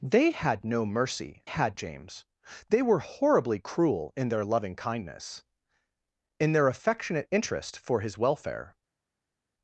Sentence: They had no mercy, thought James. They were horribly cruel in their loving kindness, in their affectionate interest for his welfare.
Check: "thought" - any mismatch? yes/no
yes